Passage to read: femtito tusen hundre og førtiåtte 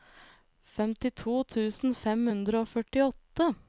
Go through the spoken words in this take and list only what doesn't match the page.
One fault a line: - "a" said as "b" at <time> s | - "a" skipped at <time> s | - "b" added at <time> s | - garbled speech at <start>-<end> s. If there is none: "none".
- "fem" added at 2.0 s